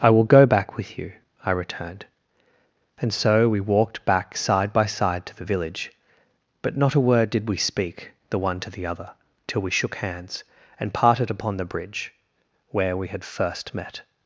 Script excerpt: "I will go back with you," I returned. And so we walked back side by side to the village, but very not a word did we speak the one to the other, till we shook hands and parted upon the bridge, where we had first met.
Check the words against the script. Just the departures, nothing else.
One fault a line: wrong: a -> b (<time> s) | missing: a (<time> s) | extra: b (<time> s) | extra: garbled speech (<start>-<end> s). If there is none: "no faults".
missing: very (6.8 s)